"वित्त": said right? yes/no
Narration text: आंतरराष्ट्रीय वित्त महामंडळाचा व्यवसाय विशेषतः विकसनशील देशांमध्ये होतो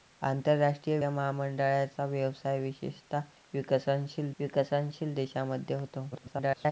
no